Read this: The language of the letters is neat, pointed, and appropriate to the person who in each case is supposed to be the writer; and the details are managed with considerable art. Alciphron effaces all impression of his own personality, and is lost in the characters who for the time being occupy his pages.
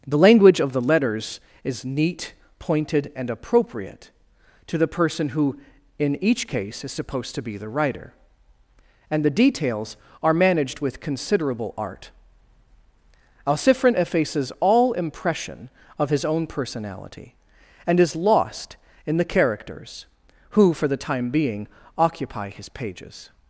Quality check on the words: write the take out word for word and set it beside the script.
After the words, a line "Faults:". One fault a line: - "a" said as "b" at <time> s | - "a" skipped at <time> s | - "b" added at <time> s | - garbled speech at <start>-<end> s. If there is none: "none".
The language of the letters is neat, pointed, and appropriate to the person who in each case is supposed to be the writer; and the details are managed with considerable art. Alciphron effaces all impression of his own personality, and is lost in the characters who for the time being occupy his pages.
Faults:
none